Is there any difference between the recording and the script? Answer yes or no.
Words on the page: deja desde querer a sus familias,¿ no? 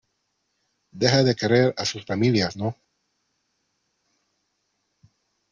yes